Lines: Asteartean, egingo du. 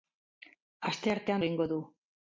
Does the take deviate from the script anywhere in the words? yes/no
no